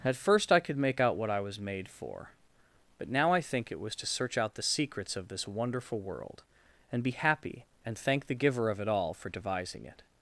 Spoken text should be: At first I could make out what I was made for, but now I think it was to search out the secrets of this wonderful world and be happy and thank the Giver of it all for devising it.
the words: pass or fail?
pass